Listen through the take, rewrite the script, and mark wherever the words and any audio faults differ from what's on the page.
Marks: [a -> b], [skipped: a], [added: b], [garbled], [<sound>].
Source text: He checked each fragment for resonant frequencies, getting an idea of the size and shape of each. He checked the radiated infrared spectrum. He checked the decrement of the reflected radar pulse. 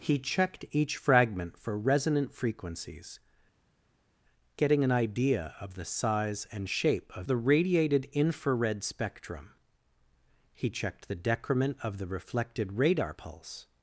He checked each fragment for resonant frequencies, getting an idea of the size and shape of [skipped: each. He checked] the radiated infrared spectrum. He checked the decrement of the reflected radar pulse.